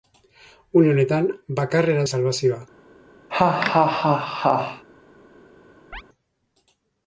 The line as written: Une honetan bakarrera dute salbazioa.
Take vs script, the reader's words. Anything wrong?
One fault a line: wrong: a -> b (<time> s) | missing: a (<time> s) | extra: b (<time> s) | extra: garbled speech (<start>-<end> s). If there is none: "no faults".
missing: dute (2.1 s)